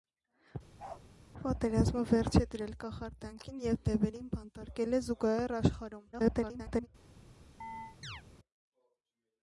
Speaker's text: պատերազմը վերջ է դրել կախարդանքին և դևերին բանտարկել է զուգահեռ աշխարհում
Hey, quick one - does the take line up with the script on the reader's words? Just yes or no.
no